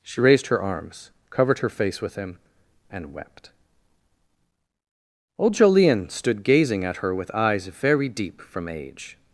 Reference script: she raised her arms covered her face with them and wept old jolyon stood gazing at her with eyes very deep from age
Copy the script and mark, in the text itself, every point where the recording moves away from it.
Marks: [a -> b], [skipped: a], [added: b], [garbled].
she raised her arms covered her face with [them -> him] and wept old jolyon stood gazing at her with eyes very deep from age